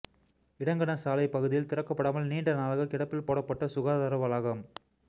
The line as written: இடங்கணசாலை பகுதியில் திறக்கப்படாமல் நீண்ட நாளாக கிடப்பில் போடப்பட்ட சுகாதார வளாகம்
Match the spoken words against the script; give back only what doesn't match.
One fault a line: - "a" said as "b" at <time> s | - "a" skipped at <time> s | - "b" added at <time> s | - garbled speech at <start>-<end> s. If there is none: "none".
none